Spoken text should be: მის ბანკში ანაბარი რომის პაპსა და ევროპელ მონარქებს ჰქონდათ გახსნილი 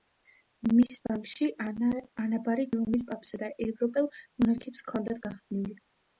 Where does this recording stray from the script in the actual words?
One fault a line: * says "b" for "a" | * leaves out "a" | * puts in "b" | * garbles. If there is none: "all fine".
all fine